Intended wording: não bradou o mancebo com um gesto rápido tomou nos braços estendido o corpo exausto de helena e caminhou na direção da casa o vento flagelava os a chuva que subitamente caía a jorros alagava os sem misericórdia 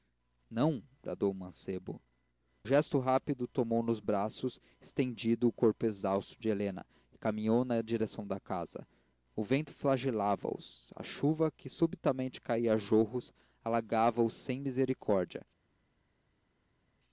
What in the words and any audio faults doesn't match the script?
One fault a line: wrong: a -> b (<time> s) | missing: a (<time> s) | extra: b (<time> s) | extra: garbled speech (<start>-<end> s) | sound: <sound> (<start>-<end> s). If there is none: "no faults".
missing: com (2.0 s)